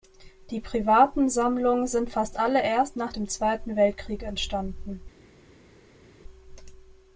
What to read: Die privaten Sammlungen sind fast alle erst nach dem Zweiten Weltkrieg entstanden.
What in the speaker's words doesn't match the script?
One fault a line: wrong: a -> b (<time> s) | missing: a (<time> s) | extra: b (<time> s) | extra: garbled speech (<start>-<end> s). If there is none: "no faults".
no faults